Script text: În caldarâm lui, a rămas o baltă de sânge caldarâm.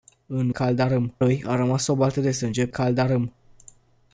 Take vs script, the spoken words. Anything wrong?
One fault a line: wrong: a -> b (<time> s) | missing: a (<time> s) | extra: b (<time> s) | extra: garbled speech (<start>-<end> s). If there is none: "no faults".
no faults